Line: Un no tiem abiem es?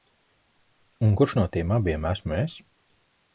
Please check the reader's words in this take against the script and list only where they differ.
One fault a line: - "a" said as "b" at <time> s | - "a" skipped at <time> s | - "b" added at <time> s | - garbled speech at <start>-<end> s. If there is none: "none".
- "kurš" added at 1.2 s
- "esmu" added at 2.1 s